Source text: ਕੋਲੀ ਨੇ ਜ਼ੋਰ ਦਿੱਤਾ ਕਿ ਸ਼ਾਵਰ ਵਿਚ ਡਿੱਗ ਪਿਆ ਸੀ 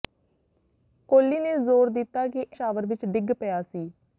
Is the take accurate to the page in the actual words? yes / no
yes